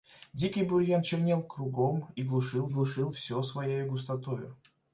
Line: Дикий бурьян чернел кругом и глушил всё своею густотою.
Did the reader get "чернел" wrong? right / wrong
right